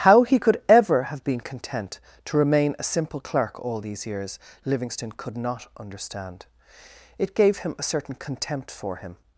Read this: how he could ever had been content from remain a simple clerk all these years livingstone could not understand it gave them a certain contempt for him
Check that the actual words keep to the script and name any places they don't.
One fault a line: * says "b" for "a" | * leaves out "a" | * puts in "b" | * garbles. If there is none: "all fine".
* says "have" for "had"
* says "to" for "from"
* says "him" for "them"